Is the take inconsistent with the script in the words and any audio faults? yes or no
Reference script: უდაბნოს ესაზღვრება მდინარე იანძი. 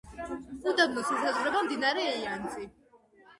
no